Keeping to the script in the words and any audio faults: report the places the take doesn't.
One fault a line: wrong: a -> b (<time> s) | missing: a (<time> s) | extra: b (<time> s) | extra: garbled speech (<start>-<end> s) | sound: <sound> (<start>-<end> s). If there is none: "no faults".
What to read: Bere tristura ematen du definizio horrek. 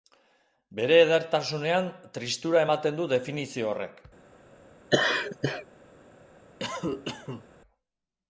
extra: edertasunean (1.0 s)
sound: laugh (4.9-5.7 s)
sound: cough (6.6-7.5 s)